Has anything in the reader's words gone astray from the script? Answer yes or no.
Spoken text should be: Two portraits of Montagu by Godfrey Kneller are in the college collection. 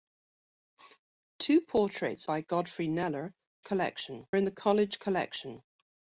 yes